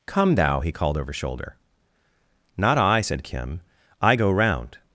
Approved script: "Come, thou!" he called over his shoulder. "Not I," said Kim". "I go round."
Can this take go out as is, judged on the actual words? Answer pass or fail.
fail